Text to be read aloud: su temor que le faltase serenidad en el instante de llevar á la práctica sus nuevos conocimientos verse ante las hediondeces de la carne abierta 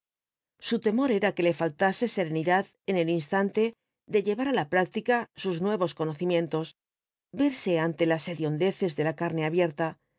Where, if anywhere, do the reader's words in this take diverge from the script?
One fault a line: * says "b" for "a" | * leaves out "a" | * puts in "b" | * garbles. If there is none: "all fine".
* puts in "era"